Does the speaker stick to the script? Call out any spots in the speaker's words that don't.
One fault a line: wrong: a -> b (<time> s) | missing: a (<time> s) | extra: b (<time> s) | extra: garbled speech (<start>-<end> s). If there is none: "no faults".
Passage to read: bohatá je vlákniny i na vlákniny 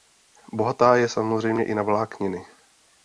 wrong: vlákniny -> samozřejmě (1.1 s)